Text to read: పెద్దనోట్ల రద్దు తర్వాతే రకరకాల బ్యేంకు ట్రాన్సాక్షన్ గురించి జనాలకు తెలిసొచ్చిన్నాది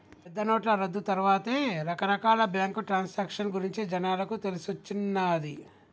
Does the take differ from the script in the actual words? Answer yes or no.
no